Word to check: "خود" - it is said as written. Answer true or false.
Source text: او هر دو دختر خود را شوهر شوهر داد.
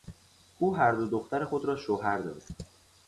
true